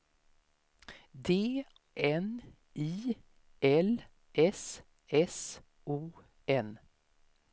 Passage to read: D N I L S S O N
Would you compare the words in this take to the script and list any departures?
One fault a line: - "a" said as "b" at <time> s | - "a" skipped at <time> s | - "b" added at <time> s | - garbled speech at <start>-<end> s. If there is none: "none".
none